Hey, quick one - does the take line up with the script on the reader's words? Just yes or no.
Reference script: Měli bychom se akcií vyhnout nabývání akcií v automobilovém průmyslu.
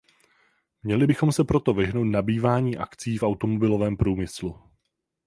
no